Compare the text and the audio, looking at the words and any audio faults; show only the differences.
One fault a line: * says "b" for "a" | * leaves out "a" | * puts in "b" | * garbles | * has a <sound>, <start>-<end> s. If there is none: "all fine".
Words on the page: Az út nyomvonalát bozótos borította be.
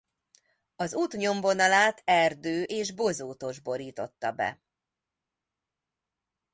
* puts in "erdő és"